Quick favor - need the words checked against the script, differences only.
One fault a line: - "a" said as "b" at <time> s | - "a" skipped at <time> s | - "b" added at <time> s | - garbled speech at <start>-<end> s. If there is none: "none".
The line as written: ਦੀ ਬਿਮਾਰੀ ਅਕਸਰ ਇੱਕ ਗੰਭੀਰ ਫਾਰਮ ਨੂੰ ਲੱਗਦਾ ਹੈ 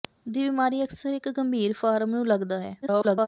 - garbled speech at 2.8-3.3 s